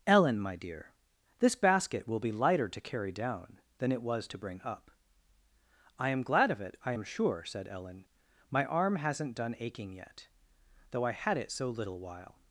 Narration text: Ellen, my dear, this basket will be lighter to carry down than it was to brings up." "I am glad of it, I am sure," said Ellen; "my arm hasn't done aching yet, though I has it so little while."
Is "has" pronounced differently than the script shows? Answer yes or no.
yes